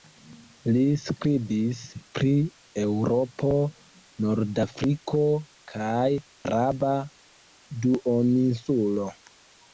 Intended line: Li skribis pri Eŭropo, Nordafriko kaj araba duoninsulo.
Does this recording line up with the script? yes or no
yes